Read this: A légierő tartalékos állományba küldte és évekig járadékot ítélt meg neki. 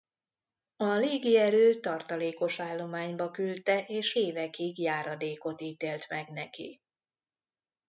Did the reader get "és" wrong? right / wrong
right